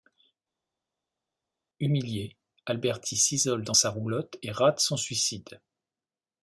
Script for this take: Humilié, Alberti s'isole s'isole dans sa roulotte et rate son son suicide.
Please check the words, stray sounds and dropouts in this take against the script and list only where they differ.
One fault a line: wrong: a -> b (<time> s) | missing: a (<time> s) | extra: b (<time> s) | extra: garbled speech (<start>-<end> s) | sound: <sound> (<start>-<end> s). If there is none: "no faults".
missing: s'isole (3.6 s)
missing: son (4.9 s)